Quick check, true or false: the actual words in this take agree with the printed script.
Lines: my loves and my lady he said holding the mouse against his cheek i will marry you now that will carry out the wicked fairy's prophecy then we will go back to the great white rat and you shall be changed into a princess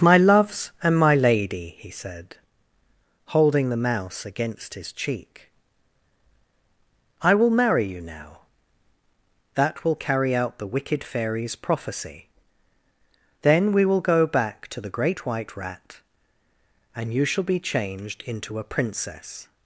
true